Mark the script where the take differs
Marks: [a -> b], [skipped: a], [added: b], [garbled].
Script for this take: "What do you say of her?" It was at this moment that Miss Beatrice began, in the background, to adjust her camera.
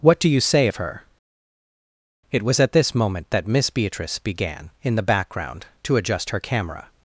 "What do you say of her?" It was at this moment that Miss Beatrice began, in the background, to adjust her camera.